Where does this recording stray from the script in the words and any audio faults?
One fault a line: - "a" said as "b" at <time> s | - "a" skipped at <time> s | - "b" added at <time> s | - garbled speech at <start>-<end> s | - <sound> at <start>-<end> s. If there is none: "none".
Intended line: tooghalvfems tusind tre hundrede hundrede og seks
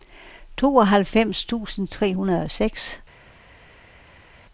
- "hundrede" skipped at 2.4 s